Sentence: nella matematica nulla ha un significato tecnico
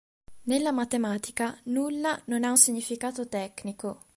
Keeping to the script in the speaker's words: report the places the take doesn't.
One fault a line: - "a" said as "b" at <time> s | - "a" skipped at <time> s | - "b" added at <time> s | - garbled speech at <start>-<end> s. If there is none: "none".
- "non" added at 2.2 s